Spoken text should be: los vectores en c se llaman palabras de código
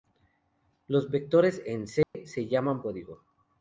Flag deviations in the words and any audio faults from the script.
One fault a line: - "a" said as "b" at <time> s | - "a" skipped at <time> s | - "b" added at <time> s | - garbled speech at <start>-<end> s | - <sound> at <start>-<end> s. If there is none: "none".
- dropout at 2.0-2.1 s
- "palabras de" skipped at 2.8 s